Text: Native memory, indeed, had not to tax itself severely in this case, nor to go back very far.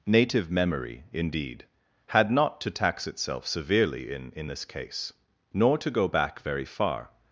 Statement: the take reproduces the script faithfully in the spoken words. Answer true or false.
false